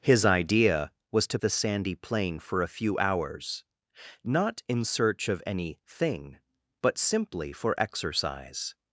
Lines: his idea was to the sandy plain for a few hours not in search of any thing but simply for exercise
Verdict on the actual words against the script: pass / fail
pass